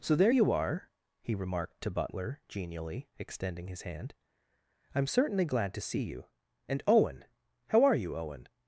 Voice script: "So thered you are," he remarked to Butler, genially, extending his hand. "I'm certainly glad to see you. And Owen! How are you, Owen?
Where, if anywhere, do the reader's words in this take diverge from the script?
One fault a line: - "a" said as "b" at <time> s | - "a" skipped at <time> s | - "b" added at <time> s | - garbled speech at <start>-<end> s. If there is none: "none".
- "thered" said as "there" at 0.1 s